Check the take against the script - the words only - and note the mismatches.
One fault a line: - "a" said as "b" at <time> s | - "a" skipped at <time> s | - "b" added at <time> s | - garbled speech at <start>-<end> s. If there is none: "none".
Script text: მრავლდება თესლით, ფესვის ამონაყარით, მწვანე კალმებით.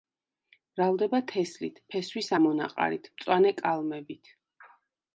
none